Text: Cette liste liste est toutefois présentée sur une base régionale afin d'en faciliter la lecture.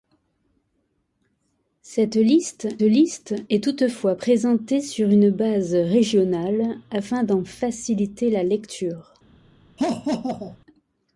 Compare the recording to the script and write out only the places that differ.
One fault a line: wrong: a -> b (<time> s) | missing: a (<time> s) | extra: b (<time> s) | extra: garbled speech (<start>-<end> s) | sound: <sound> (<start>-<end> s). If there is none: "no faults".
sound: laugh (9.8-10.6 s)